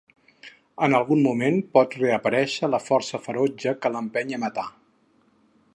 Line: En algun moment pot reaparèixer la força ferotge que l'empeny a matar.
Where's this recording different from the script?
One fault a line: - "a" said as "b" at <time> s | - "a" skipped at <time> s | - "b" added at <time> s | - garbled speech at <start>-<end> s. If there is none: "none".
none